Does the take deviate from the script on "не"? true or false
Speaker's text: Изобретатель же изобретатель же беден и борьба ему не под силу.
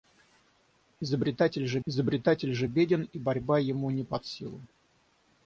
false